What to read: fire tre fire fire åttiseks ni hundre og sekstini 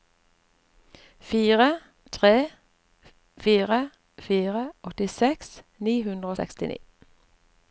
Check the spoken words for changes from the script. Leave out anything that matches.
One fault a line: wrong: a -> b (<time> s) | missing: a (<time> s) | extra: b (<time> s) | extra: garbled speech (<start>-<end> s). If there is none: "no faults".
no faults